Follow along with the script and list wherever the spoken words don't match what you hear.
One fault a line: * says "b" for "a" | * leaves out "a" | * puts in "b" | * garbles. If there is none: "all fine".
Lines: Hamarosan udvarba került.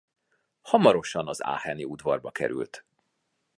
* puts in "az aacheni"